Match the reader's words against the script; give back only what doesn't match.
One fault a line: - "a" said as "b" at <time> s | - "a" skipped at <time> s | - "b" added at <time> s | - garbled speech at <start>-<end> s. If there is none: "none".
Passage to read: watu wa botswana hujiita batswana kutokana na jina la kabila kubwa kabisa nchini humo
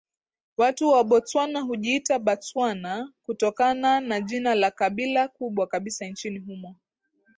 none